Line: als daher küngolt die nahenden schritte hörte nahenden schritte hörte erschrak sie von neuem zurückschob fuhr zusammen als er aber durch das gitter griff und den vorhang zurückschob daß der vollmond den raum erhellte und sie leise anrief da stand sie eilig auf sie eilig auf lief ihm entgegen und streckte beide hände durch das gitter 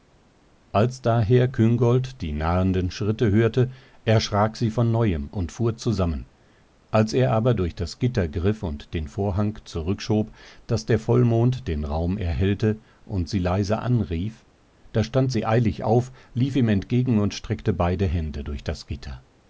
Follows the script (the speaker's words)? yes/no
no